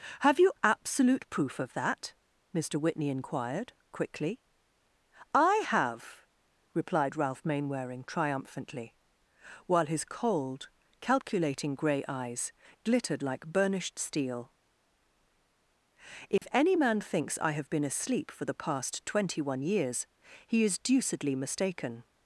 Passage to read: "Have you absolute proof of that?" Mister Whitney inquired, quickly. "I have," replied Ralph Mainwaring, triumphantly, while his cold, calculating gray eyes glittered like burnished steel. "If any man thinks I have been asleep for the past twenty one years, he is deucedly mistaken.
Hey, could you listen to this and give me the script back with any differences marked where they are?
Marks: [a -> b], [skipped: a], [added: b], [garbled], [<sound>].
"Have you absolute proof of that?" Mister Whitney inquired, quickly. "I have," replied Ralph Mainwaring, triumphantly, while his cold, calculating gray eyes glittered like burnished steel. "If [dropout] any man thinks I have been asleep for the past twenty one years, he is deucedly mistaken.